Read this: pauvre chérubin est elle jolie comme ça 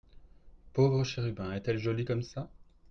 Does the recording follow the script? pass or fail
pass